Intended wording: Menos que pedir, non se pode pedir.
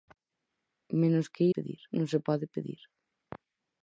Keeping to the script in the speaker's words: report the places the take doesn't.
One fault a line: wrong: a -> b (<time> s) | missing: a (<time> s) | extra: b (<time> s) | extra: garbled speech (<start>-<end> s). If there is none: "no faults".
no faults